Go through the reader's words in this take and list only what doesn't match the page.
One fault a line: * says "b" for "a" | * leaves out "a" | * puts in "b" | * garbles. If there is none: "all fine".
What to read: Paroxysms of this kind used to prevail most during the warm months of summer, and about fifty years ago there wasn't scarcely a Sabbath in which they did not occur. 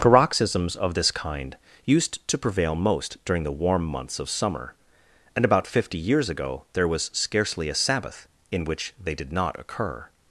* says "was" for "wasn't"